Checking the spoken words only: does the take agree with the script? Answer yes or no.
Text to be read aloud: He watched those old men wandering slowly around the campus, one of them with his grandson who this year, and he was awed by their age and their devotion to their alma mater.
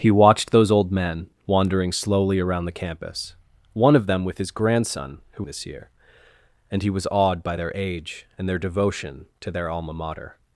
yes